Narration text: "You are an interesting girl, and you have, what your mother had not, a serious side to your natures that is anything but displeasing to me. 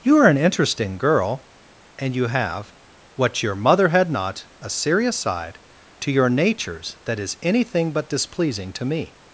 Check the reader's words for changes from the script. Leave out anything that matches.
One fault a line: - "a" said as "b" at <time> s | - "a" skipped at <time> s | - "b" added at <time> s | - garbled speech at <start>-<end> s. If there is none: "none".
none